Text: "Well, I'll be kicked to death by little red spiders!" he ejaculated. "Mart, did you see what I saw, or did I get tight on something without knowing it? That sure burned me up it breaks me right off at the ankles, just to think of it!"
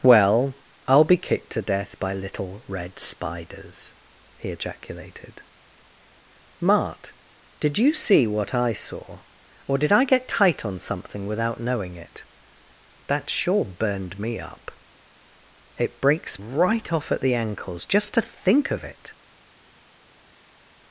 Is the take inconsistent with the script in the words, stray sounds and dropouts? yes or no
yes